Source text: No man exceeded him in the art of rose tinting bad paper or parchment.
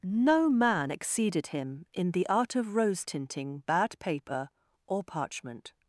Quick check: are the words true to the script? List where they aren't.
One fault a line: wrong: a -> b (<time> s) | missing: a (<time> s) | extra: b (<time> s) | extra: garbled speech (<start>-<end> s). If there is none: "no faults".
no faults